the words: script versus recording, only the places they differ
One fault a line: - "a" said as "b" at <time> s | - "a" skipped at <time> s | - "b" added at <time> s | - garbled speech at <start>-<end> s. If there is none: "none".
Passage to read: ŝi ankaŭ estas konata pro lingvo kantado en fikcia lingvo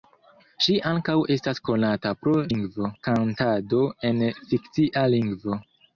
none